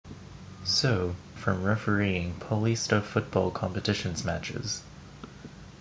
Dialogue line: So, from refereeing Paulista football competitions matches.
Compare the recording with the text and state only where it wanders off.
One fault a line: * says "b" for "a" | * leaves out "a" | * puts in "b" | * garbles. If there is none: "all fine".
all fine